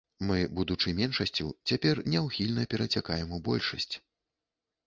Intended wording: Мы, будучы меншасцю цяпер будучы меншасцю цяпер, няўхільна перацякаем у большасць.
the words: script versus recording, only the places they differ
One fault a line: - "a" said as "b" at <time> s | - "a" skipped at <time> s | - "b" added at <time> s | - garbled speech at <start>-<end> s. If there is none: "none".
- "будучы меншасцю цяпер" skipped at 2.0 s